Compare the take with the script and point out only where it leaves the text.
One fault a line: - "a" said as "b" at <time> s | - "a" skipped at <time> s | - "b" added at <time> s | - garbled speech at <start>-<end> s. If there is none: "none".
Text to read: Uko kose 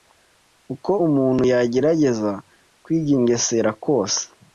- "umuntu yagerageza kwigengesera" added at 1.0 s